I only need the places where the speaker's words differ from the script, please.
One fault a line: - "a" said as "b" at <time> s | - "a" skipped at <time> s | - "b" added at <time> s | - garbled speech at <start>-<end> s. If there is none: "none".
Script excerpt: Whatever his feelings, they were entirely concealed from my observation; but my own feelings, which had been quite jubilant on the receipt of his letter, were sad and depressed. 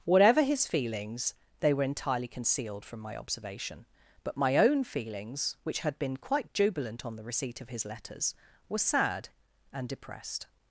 - "letter" said as "letters" at 7.8 s